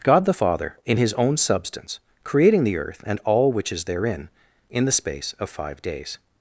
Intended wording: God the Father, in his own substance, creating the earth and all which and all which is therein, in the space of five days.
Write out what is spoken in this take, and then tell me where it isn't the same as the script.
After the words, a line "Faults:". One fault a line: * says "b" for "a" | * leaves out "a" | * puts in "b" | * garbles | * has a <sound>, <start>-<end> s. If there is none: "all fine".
God the Father, in his own substance, creating the earth and all which is therein, in the space of five days.
Faults:
* leaves out "and all which"